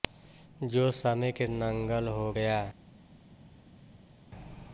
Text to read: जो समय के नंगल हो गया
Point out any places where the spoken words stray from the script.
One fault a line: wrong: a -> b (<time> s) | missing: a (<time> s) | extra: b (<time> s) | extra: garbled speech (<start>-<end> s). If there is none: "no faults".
no faults